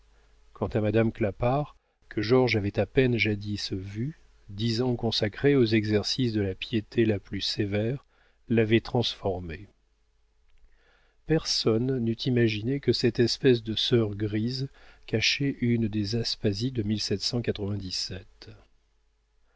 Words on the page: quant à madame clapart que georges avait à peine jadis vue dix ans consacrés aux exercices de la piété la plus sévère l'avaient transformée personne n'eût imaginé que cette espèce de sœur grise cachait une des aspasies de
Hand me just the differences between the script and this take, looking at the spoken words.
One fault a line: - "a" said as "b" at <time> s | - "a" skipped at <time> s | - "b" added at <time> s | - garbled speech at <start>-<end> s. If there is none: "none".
none